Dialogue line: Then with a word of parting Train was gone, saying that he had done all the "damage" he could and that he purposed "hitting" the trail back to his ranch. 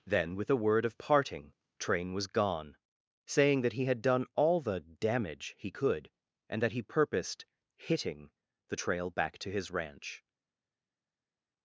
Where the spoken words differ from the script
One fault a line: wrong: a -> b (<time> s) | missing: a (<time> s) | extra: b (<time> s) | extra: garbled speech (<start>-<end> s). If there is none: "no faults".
no faults